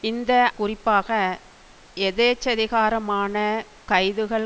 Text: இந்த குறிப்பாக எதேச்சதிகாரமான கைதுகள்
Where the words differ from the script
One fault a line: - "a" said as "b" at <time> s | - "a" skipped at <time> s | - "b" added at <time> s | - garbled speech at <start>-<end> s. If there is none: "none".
none